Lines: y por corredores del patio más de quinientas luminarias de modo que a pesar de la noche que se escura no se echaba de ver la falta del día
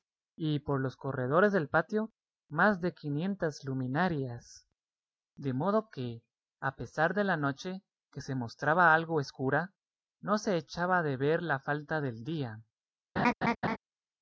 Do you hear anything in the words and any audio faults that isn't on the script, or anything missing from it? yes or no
yes